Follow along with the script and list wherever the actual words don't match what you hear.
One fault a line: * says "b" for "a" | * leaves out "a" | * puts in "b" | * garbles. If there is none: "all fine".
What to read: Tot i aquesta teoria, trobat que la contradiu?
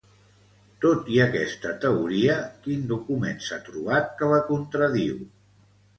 * puts in "quin document s'ha"